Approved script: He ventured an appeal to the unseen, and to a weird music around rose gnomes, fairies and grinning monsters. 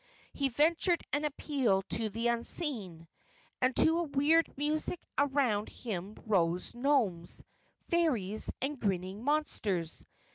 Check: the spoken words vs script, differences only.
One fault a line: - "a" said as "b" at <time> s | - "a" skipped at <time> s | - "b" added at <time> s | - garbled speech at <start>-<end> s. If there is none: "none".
- "him" added at 5.7 s